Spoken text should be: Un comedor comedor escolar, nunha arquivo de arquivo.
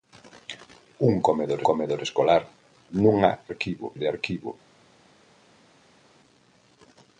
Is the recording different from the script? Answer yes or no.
no